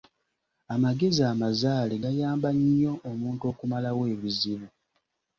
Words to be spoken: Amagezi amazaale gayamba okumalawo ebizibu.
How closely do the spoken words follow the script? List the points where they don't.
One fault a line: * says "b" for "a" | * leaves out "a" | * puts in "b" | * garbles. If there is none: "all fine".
* puts in "nnyo omuntu"